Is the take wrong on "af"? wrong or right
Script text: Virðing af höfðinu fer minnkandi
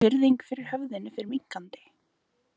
wrong